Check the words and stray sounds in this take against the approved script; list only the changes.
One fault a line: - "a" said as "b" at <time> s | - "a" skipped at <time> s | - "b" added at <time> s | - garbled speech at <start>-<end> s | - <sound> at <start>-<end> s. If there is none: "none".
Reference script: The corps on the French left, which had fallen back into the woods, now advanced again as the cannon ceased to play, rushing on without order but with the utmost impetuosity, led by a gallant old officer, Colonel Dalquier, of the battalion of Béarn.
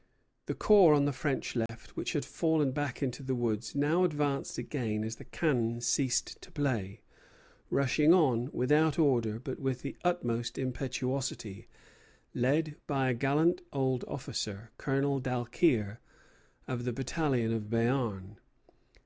- dropout at 1.7-1.7 s